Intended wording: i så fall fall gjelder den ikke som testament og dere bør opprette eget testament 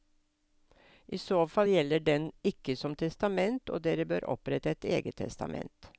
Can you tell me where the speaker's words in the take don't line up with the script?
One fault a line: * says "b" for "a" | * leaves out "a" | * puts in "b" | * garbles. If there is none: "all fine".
* leaves out "fall"
* puts in "et"